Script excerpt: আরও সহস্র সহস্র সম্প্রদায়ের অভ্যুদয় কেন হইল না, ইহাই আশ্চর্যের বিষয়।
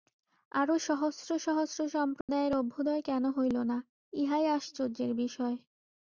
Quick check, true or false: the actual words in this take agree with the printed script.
true